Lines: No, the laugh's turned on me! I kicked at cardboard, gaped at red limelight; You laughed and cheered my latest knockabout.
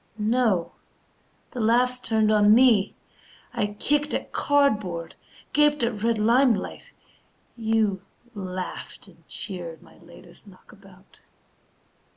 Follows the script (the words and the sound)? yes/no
yes